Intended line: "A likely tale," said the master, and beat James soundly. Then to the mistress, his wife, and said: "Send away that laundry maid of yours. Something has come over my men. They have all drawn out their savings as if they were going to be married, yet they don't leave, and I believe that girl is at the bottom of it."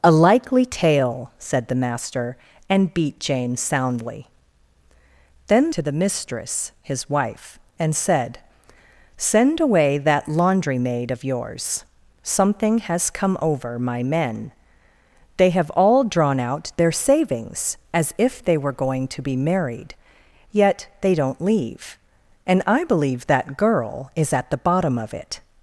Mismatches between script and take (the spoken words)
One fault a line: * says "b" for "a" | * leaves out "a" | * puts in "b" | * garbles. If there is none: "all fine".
all fine